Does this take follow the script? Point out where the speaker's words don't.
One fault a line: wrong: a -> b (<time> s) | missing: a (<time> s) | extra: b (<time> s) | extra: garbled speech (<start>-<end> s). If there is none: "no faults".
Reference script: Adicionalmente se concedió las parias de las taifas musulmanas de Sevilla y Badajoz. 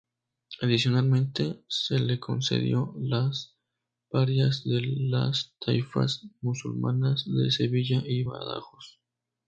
extra: le (2.0 s)